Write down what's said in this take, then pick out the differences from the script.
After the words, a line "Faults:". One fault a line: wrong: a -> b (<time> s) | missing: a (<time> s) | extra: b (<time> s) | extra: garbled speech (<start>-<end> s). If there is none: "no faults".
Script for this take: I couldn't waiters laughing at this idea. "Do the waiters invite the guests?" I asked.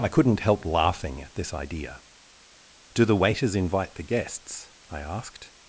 I couldn't help laughing at this idea. "Do the waiters invite the guests?" I asked.
Faults:
wrong: waiters -> help (0.4 s)